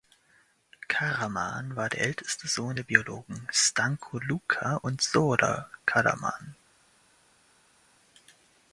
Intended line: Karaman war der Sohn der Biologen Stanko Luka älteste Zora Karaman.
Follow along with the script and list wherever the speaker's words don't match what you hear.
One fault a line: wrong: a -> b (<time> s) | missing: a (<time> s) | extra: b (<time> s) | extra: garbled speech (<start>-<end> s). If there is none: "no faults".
extra: älteste (2.0 s)
wrong: älteste -> und (4.8 s)